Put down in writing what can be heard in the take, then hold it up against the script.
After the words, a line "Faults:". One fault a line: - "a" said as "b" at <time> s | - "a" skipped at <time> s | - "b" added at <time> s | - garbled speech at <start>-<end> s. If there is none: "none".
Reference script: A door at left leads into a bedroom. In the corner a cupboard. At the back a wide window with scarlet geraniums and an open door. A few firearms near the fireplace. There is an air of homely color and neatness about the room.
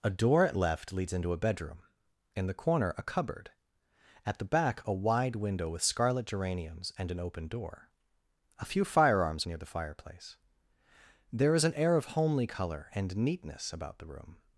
A door at left leads into a bedroom. In the corner a cupboard. At the back a wide window with scarlet geraniums and an open door. A few firearms near the fireplace. There is an air of homely color and neatness about the room.
Faults:
none